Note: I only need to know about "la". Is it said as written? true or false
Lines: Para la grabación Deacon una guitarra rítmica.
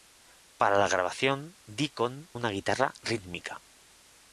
true